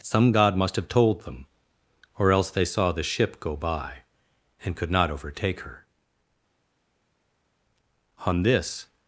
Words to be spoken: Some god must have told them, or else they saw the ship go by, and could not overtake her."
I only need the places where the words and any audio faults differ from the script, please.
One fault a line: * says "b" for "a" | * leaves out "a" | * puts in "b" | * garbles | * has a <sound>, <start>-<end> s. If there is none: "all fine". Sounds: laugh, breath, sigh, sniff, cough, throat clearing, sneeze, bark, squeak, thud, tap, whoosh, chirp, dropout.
* puts in "On this"